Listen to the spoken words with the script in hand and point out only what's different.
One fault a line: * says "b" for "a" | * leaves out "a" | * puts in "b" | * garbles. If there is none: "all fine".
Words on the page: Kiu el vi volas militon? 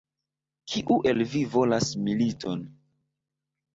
all fine